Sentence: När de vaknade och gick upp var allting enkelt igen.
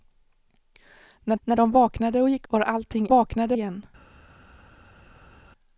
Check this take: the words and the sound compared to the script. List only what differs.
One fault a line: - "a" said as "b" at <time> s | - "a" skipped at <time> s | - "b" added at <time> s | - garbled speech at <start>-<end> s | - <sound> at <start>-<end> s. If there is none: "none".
- "när" added at 1.4 s
- "upp" skipped at 2.5 s
- "enkelt" said as "vaknade" at 3.1 s